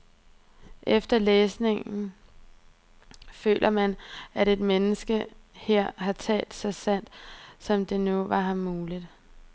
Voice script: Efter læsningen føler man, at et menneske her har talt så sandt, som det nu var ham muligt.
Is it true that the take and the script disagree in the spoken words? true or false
false